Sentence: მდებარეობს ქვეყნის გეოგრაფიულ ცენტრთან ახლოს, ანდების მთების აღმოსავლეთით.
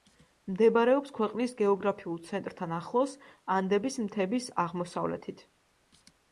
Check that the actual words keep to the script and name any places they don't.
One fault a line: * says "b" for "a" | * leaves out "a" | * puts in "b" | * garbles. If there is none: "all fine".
all fine